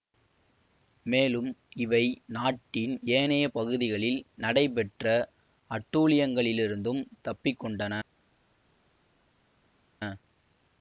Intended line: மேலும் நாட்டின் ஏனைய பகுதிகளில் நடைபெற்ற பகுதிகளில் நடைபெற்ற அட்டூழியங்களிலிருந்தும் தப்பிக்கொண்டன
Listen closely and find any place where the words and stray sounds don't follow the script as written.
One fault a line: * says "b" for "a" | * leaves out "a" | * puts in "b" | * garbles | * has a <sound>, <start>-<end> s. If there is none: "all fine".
* puts in "இவை"
* leaves out "பகுதிகளில் நடைபெற்ற"